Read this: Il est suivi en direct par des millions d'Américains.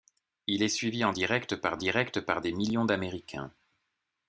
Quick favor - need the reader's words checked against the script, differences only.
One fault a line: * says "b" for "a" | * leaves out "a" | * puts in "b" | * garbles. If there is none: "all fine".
* puts in "direct par"